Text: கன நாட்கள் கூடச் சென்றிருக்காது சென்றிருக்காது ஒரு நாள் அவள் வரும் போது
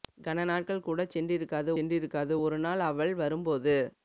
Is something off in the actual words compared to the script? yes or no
no